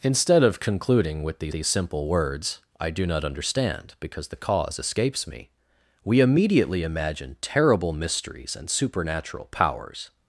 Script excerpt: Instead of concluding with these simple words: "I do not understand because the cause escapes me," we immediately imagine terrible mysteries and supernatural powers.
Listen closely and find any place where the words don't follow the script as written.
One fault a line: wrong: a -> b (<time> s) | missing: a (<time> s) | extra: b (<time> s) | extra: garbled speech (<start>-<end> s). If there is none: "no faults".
extra: these (1.5 s)